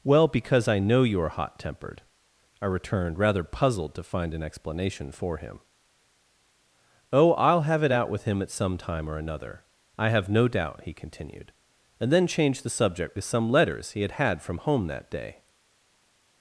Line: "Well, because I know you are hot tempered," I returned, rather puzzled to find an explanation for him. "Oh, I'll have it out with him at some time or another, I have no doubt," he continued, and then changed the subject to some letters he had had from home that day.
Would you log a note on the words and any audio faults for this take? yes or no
no